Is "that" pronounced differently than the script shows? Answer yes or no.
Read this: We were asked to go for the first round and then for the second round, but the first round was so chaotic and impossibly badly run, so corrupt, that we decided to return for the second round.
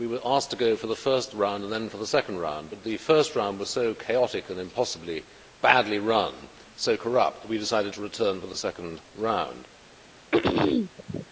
no